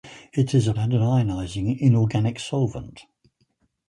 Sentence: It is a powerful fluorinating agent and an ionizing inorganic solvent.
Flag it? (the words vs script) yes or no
yes